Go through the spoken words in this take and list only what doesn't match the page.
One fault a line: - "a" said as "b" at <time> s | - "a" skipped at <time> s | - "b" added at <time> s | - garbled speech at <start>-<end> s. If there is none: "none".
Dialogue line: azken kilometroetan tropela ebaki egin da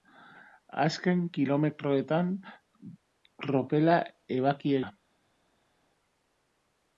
- "egin" skipped at 4.8 s